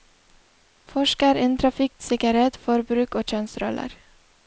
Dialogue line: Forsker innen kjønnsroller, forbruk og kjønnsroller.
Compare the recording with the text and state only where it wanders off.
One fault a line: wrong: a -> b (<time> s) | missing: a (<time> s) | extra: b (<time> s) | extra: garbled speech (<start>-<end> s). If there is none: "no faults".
wrong: kjønnsroller -> trafikksikkerhet (1.6 s)